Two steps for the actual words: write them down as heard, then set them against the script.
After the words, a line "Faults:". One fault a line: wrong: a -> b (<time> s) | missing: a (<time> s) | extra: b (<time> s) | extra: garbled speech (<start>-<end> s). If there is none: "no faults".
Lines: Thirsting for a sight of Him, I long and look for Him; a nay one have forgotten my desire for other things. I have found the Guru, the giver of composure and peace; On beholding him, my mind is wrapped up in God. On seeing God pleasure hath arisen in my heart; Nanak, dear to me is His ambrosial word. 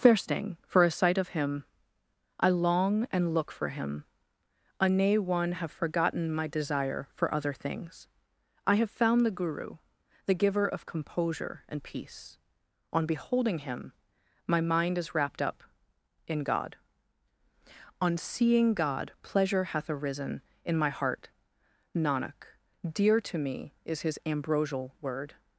Thirsting for a sight of Him, I long and look for Him; a nay one have forgotten my desire for other things. I have found the Guru, the giver of composure and peace; On beholding him, my mind is wrapped up in God. On seeing God pleasure hath arisen in my heart; Nanak, dear to me is His ambrosial word.
Faults:
no faults